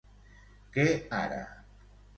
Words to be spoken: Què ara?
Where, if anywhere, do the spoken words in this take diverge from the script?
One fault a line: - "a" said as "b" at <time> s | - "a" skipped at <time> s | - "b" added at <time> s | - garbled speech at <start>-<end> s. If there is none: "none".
none